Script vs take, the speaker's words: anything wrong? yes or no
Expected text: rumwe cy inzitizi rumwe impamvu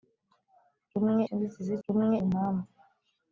no